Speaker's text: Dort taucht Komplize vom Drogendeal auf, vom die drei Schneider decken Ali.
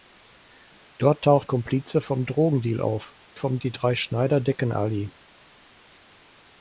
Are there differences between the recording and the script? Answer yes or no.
no